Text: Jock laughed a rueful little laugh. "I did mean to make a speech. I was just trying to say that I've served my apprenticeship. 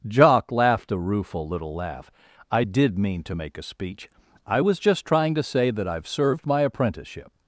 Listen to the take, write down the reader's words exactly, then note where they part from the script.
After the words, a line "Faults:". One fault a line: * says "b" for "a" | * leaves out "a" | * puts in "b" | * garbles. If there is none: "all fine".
Jock laughed a rueful little laugh. "I did mean to make a speech. I was just trying to say that I've served my apprenticeship.
Faults:
all fine